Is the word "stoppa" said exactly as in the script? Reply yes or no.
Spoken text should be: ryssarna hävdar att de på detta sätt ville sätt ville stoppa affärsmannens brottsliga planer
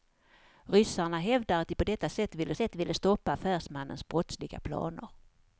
yes